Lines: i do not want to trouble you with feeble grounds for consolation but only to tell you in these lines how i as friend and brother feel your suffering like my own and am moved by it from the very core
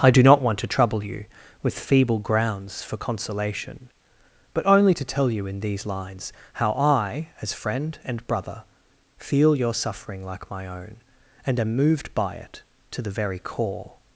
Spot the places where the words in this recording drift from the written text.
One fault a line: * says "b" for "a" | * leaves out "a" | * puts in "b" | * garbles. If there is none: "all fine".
* says "to" for "from"